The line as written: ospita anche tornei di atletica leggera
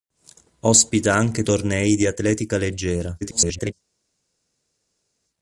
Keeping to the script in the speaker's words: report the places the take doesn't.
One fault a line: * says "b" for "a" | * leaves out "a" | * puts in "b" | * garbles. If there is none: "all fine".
* garbles